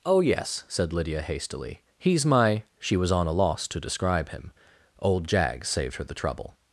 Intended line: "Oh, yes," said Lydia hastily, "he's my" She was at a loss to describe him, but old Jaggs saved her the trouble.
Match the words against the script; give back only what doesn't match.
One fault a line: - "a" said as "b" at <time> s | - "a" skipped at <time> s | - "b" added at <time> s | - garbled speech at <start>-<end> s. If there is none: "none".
- "at" said as "on" at 3.1 s
- "but" skipped at 4.5 s